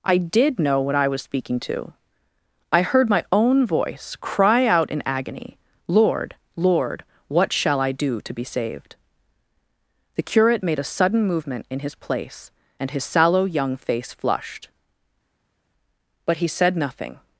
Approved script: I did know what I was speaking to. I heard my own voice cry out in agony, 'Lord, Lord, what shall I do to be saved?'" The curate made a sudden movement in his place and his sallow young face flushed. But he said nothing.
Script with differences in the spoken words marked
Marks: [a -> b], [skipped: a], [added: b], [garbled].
I did know what I was speaking to. I heard my own voice cry out in agony, 'Lord, Lord, what shall I do to be saved?'" The curate made a sudden movement in his place and his sallow young face flushed. But he said nothing.